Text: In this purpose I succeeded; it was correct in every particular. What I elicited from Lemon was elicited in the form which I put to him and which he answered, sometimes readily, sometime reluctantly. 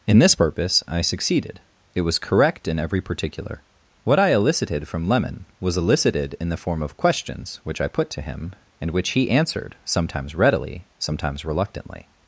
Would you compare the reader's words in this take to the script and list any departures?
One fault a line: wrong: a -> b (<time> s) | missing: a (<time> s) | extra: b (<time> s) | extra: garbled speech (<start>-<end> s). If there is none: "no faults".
extra: of questions (6.8 s)
wrong: sometime -> sometimes (11.0 s)